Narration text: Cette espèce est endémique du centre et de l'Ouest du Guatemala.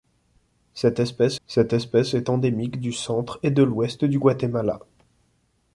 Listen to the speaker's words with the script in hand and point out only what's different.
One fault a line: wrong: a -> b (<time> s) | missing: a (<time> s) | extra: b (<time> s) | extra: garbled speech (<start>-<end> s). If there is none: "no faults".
extra: cette espèce (1.5 s)